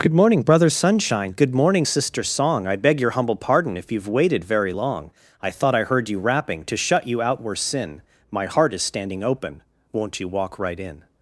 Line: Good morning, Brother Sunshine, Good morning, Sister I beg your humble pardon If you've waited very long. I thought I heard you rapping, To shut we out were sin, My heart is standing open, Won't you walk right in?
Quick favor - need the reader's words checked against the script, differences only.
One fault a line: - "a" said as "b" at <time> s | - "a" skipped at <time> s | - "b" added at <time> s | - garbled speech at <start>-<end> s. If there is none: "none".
- "Song" added at 2.2 s
- "we" said as "you" at 7.1 s